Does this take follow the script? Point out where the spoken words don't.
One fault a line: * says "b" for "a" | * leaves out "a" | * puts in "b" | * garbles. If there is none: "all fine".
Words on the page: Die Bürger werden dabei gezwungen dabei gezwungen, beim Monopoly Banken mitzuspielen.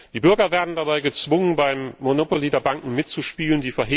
* leaves out "dabei gezwungen"
* puts in "der"